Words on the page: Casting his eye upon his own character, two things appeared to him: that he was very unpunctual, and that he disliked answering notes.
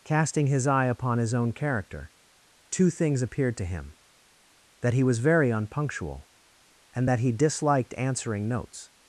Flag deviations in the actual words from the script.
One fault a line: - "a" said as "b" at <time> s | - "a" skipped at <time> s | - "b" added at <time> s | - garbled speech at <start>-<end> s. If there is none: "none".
none